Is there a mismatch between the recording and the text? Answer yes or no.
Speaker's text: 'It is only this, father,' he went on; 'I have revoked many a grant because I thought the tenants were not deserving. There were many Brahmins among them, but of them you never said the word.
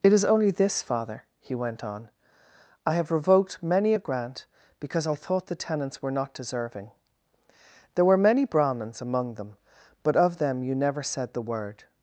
no